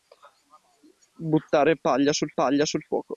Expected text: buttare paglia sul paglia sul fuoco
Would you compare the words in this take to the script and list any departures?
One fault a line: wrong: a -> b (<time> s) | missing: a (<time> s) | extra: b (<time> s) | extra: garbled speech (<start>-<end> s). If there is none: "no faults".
no faults